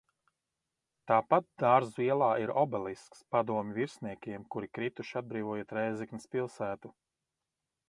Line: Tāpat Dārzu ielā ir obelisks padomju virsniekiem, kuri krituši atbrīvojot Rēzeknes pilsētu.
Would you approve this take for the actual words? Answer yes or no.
yes